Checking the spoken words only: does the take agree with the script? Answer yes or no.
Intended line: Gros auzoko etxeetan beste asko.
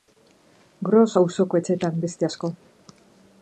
yes